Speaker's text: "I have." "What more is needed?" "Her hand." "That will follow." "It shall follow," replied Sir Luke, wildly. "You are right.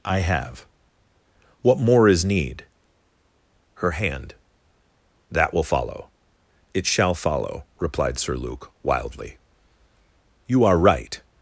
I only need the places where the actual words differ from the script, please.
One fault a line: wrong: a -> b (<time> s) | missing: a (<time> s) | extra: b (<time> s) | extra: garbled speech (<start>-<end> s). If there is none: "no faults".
wrong: needed -> need (2.2 s)